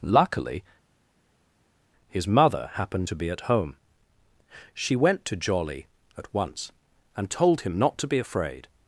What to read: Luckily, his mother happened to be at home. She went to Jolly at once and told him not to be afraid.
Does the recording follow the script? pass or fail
pass